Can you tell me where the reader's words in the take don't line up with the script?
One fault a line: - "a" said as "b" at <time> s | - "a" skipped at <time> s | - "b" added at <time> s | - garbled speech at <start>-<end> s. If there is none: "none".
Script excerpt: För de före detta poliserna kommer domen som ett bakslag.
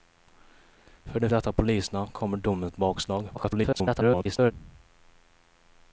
- "före" skipped at 1.3 s
- "som" skipped at 2.7 s
- garbled speech at 3.3-4.5 s